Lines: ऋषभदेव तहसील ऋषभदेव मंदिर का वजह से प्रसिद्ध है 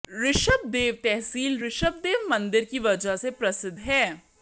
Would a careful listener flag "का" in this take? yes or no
yes